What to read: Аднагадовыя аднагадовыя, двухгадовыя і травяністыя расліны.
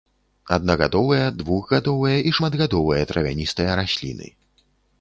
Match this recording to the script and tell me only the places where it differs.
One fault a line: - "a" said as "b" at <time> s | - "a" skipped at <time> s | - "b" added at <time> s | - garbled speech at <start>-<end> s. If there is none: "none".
- "аднагадовыя" skipped at 1.3 s
- "шматгадовыя" added at 2.4 s